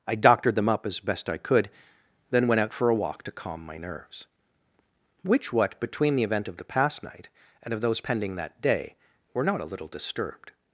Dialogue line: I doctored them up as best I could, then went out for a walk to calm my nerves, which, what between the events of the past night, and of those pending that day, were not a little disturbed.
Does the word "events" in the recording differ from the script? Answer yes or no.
yes